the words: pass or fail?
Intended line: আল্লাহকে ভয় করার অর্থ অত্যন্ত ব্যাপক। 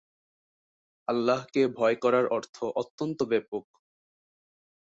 pass